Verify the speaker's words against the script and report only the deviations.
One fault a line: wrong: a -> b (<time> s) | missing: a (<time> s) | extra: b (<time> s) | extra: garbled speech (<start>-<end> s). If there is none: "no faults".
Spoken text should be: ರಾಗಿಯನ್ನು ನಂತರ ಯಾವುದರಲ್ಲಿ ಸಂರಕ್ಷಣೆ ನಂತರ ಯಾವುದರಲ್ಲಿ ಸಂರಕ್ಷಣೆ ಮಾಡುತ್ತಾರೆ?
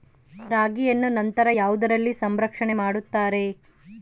missing: ನಂತರ ಯಾವುದರಲ್ಲಿ ಸಂರಕ್ಷಣೆ (2.7 s)